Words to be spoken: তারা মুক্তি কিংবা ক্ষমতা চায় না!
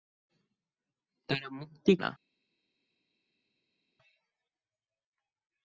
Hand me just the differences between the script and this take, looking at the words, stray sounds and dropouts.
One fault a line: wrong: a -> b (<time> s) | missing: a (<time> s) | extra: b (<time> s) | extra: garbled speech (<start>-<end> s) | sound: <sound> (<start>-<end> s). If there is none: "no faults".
missing: কিংবা ক্ষমতা চায় (1.9 s)